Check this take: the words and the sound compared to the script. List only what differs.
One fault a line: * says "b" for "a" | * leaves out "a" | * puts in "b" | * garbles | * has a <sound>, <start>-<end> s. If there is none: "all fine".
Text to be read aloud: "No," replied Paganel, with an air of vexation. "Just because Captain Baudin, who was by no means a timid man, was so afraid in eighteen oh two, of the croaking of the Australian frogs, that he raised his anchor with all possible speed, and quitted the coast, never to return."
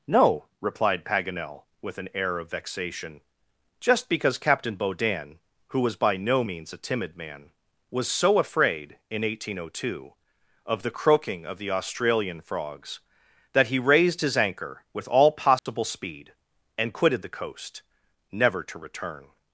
* has a dropout, 15.6-15.7 s